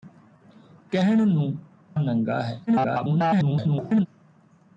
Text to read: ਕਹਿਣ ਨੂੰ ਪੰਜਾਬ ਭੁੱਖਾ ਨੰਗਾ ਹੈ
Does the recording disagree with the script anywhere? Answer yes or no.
yes